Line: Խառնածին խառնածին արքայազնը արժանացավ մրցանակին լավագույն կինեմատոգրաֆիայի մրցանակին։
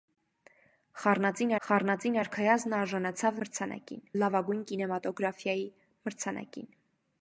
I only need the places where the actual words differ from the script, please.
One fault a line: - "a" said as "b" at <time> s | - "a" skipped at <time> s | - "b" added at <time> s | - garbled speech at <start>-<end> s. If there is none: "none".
none